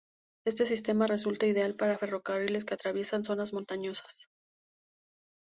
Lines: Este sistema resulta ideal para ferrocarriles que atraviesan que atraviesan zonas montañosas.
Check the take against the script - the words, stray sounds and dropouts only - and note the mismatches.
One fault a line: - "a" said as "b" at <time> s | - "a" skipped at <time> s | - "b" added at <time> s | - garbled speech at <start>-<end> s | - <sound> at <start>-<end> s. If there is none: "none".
- "que atraviesan" skipped at 3.2 s